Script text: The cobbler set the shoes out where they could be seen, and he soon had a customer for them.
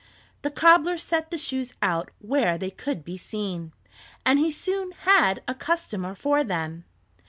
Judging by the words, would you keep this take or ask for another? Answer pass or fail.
pass